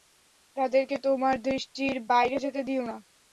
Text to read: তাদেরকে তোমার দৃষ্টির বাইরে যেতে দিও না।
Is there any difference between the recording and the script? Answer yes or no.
no